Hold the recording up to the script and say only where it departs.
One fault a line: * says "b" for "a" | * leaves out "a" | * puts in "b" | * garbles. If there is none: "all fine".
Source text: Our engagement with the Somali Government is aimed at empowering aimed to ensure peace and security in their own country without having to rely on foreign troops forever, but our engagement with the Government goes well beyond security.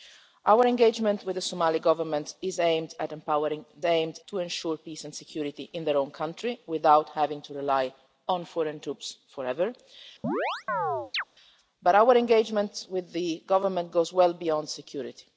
all fine